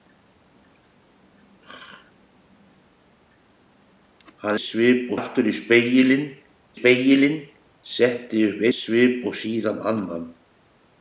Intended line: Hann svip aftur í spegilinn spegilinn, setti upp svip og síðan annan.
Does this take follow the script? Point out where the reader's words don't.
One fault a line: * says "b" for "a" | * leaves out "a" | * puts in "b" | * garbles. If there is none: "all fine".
all fine